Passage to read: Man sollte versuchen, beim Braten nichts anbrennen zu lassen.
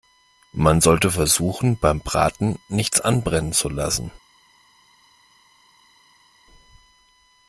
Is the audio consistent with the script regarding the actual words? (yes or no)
yes